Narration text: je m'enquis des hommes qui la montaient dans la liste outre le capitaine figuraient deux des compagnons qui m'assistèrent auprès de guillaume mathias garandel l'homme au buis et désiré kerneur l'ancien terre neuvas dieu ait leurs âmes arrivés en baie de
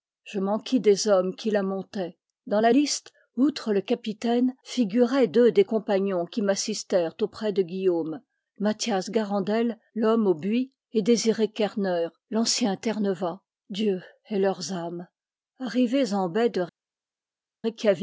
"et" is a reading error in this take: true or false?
false